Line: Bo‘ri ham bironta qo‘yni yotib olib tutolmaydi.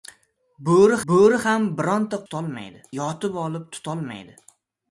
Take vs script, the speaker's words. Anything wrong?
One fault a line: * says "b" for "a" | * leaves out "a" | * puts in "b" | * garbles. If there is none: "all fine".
* puts in "bo‘ri"
* says "tutolmaydi" for "qo‘yni"